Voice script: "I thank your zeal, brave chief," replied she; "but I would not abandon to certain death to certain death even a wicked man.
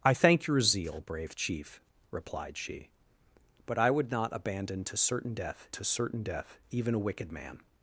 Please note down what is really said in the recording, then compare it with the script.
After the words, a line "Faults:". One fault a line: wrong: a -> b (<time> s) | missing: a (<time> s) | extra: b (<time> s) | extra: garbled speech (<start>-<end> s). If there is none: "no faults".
"I thank your zeal, brave chief," replied she; "but I would not abandon to certain death to certain death even a wicked man.
Faults:
no faults